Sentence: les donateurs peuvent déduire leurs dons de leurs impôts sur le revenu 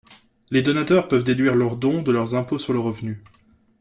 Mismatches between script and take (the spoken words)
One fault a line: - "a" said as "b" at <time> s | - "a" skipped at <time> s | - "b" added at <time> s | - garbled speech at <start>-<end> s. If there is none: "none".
none